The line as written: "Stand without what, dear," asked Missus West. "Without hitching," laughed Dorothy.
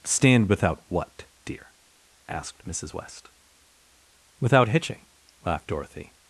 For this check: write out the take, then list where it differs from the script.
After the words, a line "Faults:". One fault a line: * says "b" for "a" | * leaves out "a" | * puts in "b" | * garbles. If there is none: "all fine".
"Stand without what, dear," asked Missus West. "Without hitching," laughed Dorothy.
Faults:
all fine